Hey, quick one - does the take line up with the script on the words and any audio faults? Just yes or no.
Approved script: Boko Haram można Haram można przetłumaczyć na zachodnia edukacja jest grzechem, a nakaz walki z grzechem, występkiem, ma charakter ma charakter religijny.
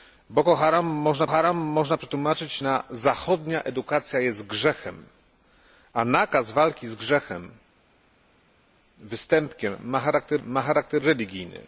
yes